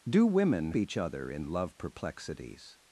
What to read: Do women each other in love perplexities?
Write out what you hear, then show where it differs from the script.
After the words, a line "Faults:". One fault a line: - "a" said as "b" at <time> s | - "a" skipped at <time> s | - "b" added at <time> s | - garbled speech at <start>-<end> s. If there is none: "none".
Do women each other in love perplexities?
Faults:
none